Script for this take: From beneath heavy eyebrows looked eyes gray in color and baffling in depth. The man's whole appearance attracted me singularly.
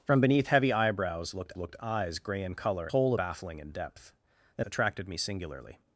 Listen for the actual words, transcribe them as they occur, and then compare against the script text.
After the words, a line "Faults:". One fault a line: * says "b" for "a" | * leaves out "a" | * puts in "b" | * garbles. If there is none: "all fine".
From beneath heavy eyebrows looked looked eyes gray in color whole baffling in depth. The attracted me singularly.
Faults:
* puts in "looked"
* says "whole" for "and"
* leaves out "man's whole appearance"